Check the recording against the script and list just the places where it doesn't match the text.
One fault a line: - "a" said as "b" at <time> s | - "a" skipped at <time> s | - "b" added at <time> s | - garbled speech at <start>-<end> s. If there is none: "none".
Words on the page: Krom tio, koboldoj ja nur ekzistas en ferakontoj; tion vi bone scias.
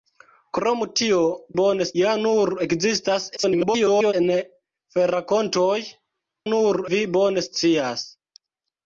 - "koboldoj" said as "bone" at 1.6 s
- garbled speech at 3.4-4.1 s
- "tion" said as "nur" at 6.5 s